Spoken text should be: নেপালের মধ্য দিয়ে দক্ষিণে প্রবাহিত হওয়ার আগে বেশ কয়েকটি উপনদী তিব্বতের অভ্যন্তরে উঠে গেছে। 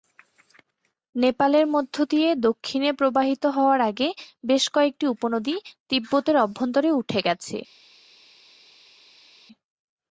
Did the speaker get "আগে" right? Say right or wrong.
right